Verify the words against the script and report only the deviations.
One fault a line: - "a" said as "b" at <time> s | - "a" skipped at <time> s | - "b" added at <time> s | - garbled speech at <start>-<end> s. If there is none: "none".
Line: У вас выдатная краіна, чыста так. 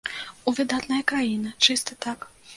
- "вас" skipped at 0.5 s